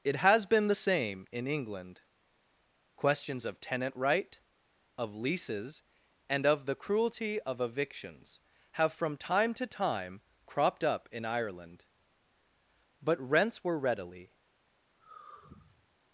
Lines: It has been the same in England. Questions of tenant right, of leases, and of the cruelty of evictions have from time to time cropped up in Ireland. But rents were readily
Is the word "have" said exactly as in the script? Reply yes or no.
yes